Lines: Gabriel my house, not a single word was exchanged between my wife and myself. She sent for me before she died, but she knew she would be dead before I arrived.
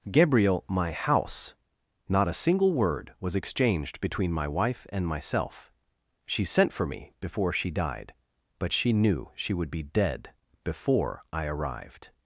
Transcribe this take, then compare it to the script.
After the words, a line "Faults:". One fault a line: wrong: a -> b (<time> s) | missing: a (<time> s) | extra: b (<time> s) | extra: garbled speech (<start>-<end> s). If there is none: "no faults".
Gabriel my house, not a single word was exchanged between my wife and myself. She sent for me before she died, but she knew she would be dead before I arrived.
Faults:
no faults